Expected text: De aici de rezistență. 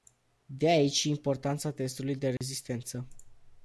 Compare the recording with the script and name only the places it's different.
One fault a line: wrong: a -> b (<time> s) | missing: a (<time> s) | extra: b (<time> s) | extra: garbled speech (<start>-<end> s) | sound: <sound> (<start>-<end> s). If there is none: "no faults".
extra: și importanța testului (0.9 s)
sound: dropout (2.4-2.4 s)